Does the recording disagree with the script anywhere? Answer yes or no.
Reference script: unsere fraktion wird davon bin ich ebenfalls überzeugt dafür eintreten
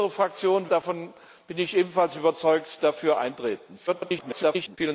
yes